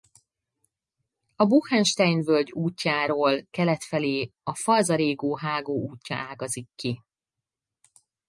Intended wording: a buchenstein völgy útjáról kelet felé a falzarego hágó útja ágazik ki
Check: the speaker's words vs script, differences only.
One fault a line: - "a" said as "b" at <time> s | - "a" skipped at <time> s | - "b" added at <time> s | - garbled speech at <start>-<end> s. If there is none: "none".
none